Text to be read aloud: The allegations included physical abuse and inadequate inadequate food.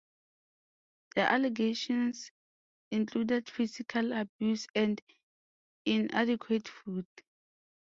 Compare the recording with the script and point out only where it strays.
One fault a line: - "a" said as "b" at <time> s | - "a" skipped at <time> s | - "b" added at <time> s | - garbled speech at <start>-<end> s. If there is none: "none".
- "inadequate" skipped at 6.7 s